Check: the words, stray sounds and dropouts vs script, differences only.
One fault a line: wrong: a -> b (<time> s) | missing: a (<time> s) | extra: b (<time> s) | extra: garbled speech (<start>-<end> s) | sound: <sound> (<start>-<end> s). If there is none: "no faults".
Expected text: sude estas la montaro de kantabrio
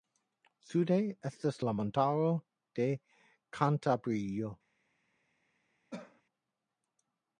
sound: cough (5.9-6.2 s)